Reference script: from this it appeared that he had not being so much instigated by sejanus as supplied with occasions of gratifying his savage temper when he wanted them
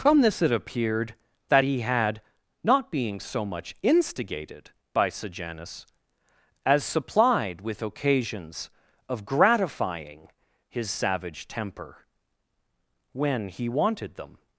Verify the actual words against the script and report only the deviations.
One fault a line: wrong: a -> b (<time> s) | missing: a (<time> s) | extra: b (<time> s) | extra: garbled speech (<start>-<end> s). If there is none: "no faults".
no faults